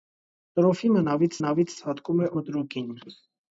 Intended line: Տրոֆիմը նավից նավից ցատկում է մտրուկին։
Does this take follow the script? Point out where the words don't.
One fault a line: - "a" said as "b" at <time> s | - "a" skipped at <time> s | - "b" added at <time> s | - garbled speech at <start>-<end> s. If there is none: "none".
none